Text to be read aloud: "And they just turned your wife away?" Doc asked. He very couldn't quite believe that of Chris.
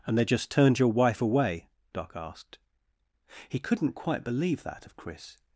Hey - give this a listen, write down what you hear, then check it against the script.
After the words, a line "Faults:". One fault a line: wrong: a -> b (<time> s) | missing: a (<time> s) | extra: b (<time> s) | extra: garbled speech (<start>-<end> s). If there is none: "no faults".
"And they just turned your wife away?" Doc asked. He couldn't quite believe that of Chris.
Faults:
missing: very (3.6 s)